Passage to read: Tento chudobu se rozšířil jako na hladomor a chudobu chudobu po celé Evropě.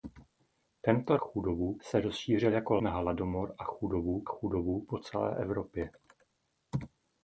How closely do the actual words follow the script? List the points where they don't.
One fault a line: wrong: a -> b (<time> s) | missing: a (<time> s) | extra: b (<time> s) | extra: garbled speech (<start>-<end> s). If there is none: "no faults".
no faults